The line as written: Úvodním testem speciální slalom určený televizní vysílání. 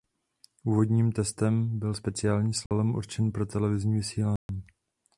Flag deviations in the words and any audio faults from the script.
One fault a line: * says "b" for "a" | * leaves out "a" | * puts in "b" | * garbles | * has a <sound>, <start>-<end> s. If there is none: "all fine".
* puts in "byl"
* has a dropout, 2.7-2.7 s
* puts in "pro"
* has a dropout, 4.4-4.5 s